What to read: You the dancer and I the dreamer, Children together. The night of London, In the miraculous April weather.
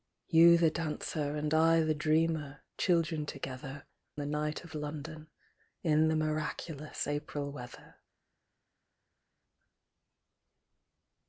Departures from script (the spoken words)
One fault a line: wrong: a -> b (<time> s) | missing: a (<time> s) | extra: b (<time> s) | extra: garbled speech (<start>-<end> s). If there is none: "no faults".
no faults